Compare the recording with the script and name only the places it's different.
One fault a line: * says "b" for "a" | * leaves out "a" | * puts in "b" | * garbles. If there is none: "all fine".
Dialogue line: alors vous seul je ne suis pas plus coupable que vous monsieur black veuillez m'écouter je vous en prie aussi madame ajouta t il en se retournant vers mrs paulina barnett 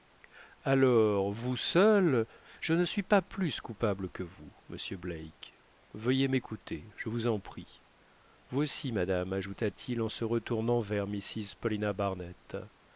* puts in "vous"